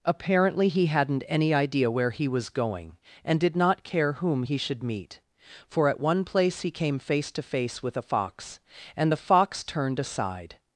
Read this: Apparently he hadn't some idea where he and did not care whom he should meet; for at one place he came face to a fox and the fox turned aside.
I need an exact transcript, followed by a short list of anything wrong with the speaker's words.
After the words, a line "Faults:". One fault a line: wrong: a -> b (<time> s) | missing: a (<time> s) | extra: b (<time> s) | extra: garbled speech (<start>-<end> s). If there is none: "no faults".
Apparently he hadn't any idea where he was going and did not care whom he should meet; for at one place he came face to face with a fox and the fox turned aside.
Faults:
wrong: some -> any (1.3 s)
extra: was going (2.3 s)
extra: face with (7.4 s)